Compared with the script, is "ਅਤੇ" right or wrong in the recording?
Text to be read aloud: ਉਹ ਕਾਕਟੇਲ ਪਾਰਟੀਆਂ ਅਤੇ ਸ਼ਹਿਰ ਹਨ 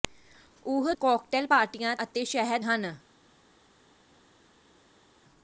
right